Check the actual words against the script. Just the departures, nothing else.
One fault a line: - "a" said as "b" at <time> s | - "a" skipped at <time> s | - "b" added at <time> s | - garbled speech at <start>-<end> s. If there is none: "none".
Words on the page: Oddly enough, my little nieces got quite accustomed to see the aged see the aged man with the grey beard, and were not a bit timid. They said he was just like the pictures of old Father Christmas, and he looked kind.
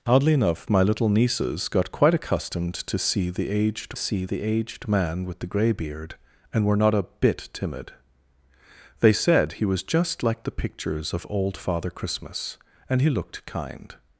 none